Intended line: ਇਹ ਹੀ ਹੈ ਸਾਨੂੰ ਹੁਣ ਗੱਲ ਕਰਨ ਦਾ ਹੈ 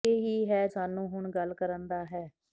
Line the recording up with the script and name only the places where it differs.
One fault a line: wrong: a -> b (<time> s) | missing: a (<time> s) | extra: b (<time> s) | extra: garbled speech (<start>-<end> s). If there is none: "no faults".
no faults